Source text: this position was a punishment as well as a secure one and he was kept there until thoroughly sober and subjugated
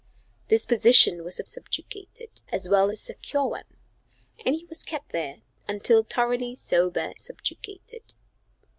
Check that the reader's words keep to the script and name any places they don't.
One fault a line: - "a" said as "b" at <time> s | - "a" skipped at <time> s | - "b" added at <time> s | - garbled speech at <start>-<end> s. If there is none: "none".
- "punishment" said as "subjugated" at 1.5 s
- "as" skipped at 2.9 s
- "and" skipped at 7.1 s